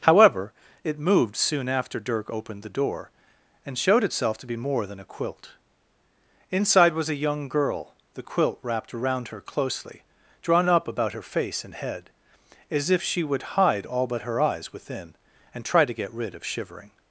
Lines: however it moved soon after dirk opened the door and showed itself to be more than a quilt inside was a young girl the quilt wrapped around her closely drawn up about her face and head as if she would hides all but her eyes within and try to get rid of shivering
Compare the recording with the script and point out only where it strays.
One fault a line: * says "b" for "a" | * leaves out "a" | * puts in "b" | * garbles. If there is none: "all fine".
* says "hide" for "hides"